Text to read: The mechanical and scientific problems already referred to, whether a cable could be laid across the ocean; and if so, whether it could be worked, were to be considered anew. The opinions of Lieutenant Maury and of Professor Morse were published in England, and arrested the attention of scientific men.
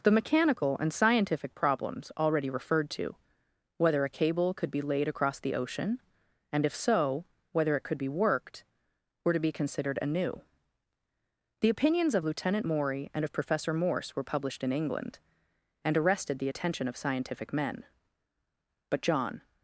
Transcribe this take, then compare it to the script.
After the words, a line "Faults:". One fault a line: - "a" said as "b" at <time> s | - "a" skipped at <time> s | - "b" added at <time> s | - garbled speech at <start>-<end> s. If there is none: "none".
The mechanical and scientific problems already referred to, whether a cable could be laid across the ocean; and if so, whether it could be worked, were to be considered anew. The opinions of Lieutenant Maury and of Professor Morse were published in England, and arrested the attention of scientific men. But John
Faults:
- "But John" added at 18.9 s